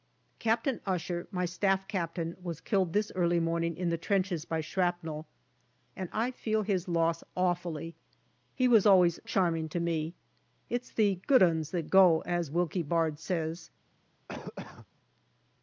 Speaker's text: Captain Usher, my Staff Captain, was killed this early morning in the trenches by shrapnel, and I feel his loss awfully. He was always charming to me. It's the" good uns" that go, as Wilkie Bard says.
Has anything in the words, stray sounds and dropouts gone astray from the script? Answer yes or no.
yes